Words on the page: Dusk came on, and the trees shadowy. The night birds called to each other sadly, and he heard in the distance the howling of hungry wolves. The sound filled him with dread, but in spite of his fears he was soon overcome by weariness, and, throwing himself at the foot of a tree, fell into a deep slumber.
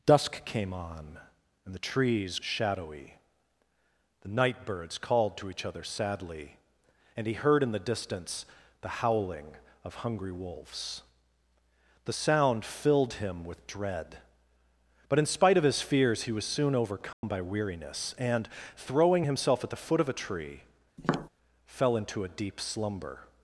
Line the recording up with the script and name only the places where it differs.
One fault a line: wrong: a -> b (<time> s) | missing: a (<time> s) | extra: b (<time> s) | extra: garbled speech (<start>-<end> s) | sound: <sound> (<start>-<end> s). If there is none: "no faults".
sound: dropout (17.1-17.2 s)
sound: tap (21.0-21.3 s)